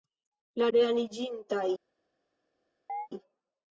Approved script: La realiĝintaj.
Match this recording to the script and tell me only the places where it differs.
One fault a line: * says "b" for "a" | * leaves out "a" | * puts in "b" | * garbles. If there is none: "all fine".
all fine